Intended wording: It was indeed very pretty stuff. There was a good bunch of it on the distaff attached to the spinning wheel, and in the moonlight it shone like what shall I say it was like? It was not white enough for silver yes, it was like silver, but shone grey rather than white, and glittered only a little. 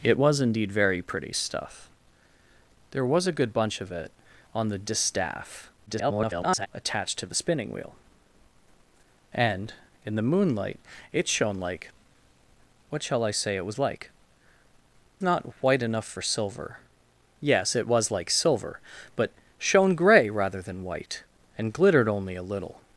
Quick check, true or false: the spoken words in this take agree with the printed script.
false